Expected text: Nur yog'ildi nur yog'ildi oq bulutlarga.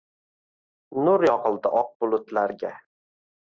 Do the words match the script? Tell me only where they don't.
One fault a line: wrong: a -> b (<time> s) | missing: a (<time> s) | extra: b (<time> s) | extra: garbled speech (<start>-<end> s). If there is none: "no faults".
missing: nur yog'ildi (1.7 s)